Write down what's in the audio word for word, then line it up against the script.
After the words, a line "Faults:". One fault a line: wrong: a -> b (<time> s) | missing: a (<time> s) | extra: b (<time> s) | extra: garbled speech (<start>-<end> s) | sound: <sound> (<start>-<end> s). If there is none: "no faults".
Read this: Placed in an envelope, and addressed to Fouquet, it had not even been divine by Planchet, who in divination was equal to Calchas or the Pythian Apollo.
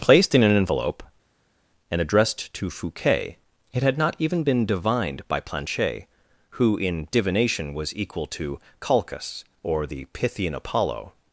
Placed in an envelope, and addressed to Fouquet, it had not even been divined by Planchet, who in divination was equal to Calchas or the Pythian Apollo.
Faults:
wrong: divine -> divined (4.7 s)